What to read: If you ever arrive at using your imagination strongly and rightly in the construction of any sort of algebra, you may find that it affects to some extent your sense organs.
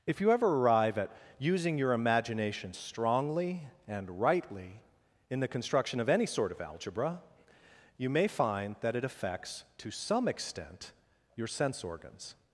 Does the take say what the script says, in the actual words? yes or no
yes